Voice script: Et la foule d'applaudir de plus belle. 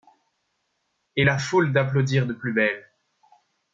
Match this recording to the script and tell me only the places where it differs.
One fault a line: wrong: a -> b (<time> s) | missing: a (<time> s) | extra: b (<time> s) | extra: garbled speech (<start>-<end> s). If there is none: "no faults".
no faults